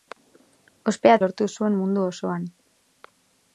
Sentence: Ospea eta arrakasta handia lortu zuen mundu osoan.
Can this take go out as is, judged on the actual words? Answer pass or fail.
fail